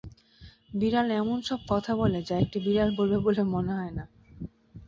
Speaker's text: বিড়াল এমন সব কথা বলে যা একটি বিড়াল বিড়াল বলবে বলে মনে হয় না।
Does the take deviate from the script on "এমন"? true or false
false